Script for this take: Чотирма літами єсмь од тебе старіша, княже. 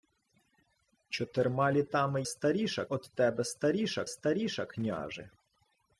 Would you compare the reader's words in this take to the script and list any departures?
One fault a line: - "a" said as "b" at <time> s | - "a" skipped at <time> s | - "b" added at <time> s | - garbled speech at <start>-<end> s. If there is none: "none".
- "єсмь" said as "старіша" at 2.3 s
- "старіша" added at 4.1 s